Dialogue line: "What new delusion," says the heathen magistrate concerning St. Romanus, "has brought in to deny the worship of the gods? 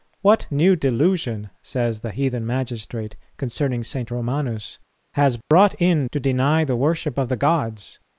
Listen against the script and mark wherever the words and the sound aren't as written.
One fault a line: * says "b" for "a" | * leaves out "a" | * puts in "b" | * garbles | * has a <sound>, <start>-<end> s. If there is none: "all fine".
* has a dropout, 5.4-5.5 s